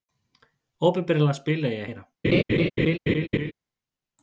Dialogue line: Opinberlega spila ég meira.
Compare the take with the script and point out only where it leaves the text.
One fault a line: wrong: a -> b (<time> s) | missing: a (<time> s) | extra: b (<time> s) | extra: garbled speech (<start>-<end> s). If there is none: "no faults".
no faults